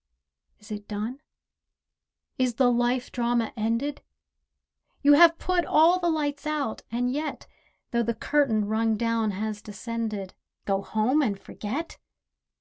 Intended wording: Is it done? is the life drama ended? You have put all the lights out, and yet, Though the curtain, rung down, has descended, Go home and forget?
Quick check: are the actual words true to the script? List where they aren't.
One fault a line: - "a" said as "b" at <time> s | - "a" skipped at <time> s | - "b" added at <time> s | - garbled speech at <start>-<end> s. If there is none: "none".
none